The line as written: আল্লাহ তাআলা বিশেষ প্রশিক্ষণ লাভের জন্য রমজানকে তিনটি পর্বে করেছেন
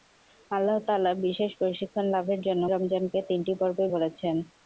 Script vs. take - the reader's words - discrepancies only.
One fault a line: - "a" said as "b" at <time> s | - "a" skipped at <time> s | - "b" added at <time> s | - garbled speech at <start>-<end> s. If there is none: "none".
none